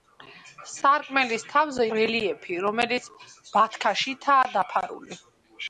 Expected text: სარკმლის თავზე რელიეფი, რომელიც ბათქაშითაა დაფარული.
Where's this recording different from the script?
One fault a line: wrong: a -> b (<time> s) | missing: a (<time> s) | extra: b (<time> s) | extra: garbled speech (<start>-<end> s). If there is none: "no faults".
no faults